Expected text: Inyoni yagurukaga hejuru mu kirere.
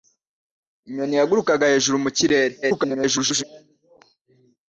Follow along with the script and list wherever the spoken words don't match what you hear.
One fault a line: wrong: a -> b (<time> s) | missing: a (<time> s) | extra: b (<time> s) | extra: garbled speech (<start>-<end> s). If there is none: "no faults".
extra: garbled speech (2.6-3.4 s)